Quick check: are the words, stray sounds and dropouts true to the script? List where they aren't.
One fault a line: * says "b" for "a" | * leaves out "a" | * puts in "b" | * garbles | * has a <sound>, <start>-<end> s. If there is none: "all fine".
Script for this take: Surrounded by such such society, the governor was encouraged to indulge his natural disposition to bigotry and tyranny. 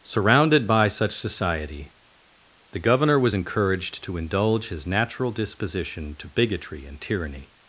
* leaves out "such"